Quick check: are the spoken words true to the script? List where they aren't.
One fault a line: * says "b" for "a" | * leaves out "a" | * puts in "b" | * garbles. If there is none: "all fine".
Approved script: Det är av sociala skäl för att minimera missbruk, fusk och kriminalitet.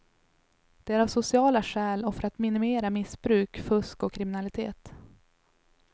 * puts in "och"